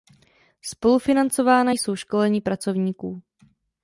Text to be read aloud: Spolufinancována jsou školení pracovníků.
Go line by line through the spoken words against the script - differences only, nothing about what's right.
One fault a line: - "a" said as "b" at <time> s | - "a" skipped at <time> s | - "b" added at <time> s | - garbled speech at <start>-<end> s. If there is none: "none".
none